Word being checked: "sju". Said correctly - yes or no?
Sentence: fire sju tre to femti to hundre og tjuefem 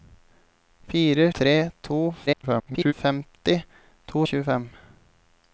no